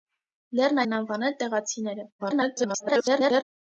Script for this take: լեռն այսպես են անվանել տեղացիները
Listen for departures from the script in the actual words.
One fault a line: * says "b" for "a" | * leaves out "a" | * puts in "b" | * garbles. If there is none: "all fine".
* leaves out "այսպես"
* garbles